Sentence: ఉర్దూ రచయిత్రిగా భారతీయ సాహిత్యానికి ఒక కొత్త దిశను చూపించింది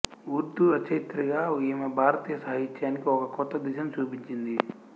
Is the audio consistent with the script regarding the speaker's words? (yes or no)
no